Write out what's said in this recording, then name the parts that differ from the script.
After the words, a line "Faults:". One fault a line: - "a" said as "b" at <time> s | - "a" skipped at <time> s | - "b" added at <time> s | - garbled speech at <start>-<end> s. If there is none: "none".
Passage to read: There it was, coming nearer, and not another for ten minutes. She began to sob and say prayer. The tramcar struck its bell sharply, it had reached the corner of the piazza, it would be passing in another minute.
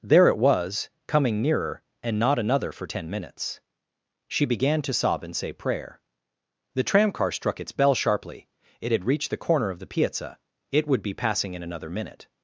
There it was, coming nearer, and not another for ten minutes. She began to sob and say prayer. The tramcar struck its bell sharply, it had reached the corner of the piazza, it would be passing in another minute.
Faults:
none